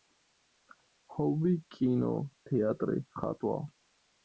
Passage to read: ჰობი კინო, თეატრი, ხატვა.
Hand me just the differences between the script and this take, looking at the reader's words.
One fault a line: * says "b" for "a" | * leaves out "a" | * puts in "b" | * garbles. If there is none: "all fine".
all fine